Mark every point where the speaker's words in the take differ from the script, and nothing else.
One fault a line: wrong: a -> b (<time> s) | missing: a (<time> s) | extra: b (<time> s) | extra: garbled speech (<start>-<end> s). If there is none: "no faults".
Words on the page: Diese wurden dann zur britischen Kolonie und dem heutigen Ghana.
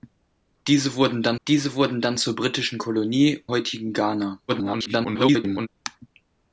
extra: diese wurden dann (1.5 s)
missing: und dem (3.4 s)
extra: garbled speech (4.5-5.7 s)